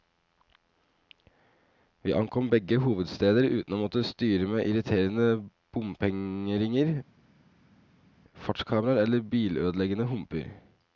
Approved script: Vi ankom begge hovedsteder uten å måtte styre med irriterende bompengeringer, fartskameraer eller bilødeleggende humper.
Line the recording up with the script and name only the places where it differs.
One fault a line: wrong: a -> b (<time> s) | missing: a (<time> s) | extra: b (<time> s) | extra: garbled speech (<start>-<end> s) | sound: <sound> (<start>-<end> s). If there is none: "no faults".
no faults